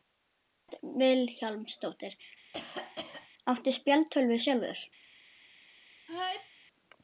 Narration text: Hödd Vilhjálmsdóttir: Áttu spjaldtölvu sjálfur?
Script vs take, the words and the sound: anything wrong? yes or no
yes